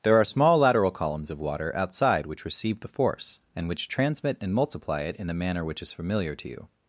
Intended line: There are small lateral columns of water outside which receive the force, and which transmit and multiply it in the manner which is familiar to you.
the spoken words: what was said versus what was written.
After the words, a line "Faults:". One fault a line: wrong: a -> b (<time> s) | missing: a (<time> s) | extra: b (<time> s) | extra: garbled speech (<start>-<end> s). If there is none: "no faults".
There are small lateral columns of water outside which receive the force, and which transmit and multiply it in the manner which is familiar to you.
Faults:
no faults